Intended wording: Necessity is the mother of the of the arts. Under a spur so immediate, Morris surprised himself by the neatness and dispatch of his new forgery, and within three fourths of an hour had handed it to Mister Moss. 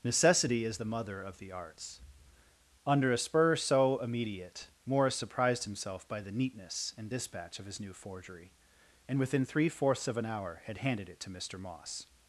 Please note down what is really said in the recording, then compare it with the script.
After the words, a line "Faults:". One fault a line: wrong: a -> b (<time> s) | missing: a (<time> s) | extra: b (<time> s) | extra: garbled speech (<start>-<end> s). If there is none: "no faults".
Necessity is the mother of the arts. Under a spur so immediate, Morris surprised himself by the neatness and dispatch of his new forgery, and within three fourths of an hour had handed it to Mister Moss.
Faults:
missing: of the (1.5 s)